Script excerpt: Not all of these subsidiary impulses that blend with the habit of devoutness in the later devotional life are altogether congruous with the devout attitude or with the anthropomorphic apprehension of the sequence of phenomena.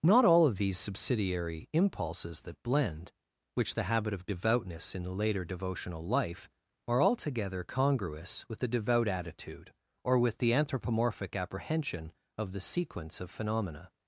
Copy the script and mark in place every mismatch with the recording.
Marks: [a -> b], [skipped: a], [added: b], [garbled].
Not all of these subsidiary impulses that blend [with -> which] the habit of devoutness in the later devotional life are altogether congruous with the devout attitude or with the anthropomorphic apprehension of the sequence of phenomena.